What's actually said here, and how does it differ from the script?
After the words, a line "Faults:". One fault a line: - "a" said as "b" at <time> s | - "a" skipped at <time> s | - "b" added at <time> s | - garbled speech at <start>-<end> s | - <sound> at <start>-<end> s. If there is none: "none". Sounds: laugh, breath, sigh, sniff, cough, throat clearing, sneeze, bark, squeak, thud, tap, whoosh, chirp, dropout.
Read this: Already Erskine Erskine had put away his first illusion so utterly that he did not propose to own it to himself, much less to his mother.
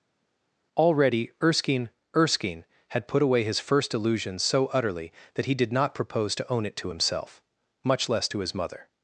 Already Erskine Erskine had put away his first illusion so utterly that he did not propose to own it to himself, much less to his mother.
Faults:
none